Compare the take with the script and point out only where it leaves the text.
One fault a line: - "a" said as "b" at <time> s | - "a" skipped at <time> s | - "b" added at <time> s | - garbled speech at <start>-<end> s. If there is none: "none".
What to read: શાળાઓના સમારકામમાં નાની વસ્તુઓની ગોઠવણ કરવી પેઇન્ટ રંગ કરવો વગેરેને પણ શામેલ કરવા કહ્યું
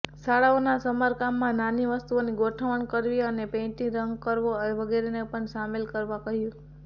- "અને" added at 3.2 s